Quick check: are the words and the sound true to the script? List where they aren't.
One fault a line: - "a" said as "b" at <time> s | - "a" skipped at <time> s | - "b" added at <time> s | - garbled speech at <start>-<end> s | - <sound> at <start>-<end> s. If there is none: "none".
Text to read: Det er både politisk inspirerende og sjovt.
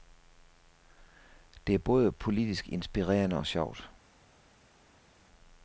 none